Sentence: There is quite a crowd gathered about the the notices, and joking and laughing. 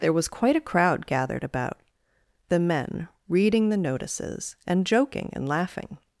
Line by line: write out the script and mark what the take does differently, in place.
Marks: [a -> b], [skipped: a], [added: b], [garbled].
There [is -> was] quite a crowd gathered about the [added: men reading] the notices, and joking and laughing.